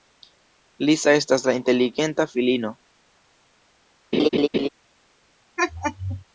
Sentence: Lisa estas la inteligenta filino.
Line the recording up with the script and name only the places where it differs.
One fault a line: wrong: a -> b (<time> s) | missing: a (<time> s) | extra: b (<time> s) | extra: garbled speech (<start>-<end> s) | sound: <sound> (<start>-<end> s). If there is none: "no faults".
sound: laugh (4.1-4.7 s)
sound: laugh (5.6-6.2 s)